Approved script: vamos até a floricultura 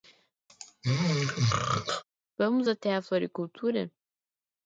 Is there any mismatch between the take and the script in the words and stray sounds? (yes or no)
yes